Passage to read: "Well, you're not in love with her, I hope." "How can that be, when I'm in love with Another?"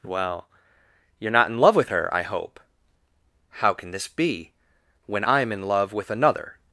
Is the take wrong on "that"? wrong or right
wrong